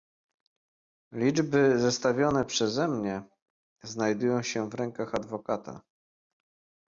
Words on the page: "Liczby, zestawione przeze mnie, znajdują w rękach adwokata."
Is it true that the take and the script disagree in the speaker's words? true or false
true